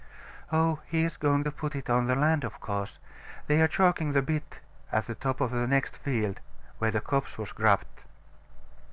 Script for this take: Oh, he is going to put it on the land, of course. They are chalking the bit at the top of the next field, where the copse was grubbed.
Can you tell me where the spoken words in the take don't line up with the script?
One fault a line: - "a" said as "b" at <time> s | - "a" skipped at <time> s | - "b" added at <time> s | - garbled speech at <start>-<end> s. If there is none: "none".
none